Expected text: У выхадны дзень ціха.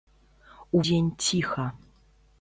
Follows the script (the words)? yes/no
no